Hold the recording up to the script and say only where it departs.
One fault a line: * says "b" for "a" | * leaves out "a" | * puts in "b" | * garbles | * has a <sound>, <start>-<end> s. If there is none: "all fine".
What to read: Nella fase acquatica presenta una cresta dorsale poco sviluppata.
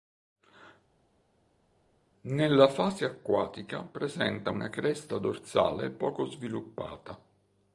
all fine